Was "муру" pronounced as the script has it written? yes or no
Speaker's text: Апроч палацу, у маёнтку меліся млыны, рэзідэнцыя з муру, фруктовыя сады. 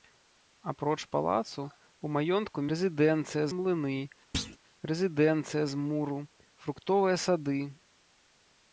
yes